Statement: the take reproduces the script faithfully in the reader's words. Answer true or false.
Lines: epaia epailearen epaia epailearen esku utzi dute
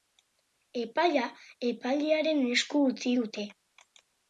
false